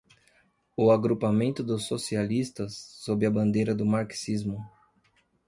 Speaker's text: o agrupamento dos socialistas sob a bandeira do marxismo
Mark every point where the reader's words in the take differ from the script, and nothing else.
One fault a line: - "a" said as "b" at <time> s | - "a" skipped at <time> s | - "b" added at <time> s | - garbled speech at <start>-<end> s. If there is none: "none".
none